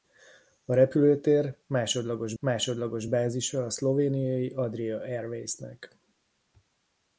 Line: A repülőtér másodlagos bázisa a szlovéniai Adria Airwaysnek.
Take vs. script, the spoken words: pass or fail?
fail